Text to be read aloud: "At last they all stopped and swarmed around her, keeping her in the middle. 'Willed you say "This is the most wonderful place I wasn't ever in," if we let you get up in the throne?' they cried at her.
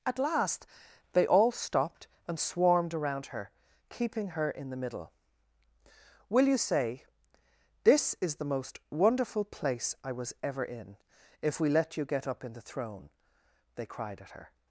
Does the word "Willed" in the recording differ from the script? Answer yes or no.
yes